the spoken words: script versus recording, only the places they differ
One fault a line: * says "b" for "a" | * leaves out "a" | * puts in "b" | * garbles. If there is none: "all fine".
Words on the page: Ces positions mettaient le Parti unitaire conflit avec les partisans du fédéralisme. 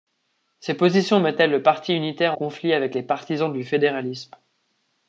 all fine